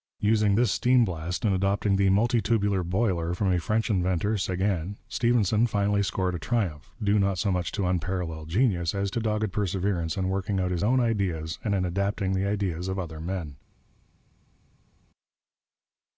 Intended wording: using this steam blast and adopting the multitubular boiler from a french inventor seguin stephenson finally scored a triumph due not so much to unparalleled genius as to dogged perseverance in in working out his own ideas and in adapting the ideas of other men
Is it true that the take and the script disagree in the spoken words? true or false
true